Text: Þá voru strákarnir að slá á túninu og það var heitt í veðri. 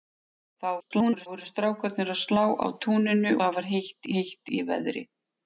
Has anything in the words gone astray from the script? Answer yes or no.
yes